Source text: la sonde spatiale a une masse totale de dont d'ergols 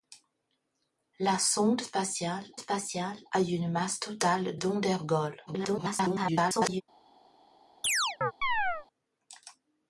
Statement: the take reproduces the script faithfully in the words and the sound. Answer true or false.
false